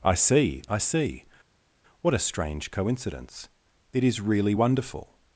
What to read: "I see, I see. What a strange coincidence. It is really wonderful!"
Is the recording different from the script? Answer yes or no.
no